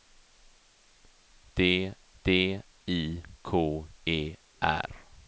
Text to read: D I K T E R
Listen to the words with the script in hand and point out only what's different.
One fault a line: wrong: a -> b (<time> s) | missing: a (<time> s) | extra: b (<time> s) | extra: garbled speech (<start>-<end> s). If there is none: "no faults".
extra: d (2.2 s)
missing: T (3.8 s)